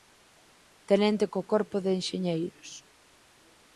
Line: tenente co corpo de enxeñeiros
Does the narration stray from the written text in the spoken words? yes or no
no